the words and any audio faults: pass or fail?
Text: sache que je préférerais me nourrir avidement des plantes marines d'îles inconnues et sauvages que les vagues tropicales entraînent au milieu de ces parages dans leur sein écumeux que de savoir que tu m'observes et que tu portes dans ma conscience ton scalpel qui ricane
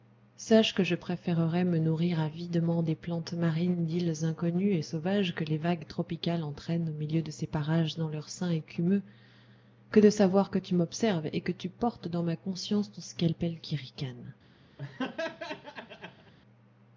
fail